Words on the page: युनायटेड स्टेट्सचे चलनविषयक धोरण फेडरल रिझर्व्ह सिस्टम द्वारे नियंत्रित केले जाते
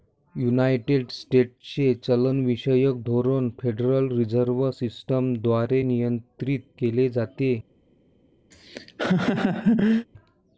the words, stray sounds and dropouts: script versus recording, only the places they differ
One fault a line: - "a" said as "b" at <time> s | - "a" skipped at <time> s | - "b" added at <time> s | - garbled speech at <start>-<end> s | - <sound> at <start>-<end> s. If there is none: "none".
- laugh at 8.5-10.1 s